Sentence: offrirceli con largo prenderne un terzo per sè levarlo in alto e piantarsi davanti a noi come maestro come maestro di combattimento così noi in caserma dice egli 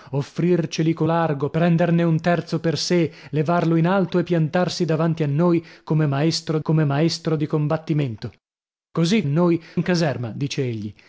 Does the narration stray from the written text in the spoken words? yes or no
no